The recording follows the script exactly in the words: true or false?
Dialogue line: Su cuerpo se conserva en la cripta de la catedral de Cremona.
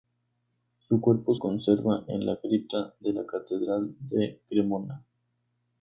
false